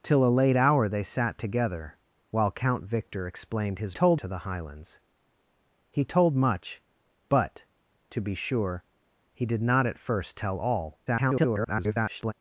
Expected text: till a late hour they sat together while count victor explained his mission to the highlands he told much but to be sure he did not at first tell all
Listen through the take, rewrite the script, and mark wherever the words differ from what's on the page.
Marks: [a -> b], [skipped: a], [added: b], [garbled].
till a late hour they sat together while count victor explained his [mission -> told] to the highlands he told much but to be sure he did not at first tell all [garbled]